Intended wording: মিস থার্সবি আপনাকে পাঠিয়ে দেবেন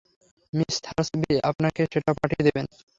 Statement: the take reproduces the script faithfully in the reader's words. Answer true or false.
false